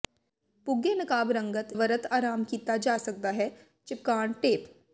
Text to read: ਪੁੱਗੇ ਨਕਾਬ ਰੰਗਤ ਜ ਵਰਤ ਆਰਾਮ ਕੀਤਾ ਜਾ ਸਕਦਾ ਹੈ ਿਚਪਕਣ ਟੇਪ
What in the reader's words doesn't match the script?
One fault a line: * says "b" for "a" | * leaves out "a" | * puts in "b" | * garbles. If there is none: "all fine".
* leaves out "ਜ"